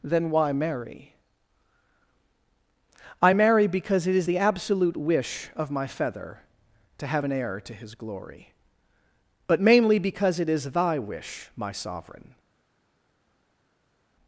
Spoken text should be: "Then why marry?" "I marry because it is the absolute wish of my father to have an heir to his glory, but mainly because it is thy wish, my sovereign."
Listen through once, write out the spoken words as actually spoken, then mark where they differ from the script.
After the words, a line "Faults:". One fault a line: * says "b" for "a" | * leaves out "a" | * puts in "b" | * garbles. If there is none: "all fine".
"Then why marry?" "I marry because it is the absolute wish of my feather to have an heir to his glory, but mainly because it is thy wish, my sovereign."
Faults:
* says "feather" for "father"